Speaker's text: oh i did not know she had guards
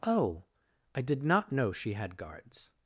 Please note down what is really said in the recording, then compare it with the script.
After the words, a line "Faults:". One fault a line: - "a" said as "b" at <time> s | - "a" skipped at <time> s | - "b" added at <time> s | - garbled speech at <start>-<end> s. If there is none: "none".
oh i did not know she had guards
Faults:
none